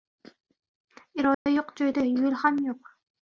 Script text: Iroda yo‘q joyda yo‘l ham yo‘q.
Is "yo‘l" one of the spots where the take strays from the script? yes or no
no